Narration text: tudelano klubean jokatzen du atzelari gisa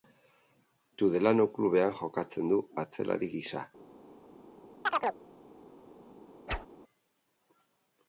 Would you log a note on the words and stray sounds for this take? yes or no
yes